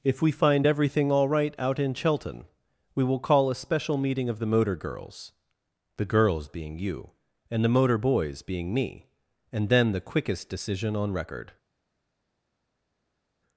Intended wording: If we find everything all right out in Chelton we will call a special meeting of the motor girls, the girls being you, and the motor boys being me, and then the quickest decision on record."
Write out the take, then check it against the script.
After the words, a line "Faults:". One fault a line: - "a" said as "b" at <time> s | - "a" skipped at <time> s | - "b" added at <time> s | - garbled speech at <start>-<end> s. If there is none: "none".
If we find everything all right out in Chelton we will call a special meeting of the motor girls, the girls being you, and the motor boys being me, and then the quickest decision on record."
Faults:
none